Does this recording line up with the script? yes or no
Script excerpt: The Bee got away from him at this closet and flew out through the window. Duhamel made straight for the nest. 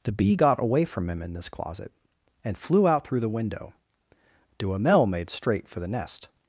no